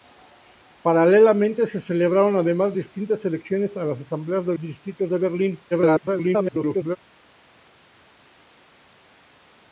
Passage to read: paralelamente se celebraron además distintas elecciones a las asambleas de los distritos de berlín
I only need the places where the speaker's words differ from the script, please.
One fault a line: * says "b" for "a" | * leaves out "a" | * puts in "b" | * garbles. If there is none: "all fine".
* leaves out "los"
* garbles